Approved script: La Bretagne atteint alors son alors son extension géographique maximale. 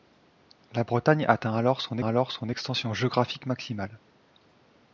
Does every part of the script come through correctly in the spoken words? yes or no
yes